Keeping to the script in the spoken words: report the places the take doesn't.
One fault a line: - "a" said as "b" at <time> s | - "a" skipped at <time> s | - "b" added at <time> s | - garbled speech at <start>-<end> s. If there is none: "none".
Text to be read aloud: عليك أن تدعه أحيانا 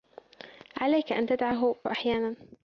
none